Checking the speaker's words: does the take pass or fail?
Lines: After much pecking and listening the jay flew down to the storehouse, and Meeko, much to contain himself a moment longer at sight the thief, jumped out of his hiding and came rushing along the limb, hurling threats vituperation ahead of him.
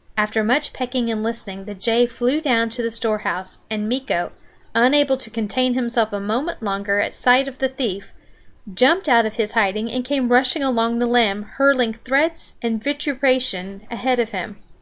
fail